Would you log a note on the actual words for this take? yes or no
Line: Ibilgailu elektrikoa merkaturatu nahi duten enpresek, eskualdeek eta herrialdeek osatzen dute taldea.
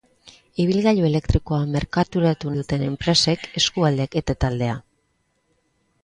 yes